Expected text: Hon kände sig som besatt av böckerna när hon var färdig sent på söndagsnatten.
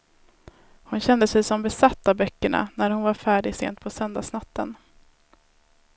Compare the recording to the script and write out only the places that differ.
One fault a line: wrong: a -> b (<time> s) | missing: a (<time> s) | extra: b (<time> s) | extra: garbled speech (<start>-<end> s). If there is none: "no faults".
no faults